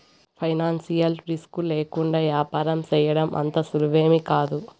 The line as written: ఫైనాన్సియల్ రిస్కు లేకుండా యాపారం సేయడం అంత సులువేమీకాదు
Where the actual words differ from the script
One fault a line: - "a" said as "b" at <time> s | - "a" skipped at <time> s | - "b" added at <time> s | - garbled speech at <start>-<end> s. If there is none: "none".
none